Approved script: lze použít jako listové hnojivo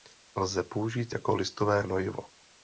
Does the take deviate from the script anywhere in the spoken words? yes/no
no